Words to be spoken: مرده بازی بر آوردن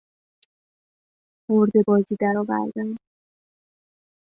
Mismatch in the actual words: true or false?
true